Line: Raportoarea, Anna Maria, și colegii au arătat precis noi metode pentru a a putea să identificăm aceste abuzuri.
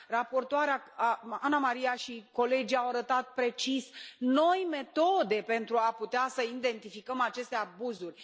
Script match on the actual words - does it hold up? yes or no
no